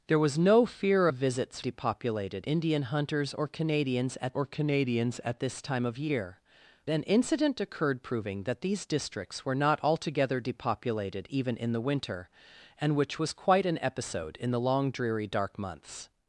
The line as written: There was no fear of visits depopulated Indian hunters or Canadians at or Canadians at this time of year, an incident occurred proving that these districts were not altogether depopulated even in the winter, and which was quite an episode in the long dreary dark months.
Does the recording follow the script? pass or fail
pass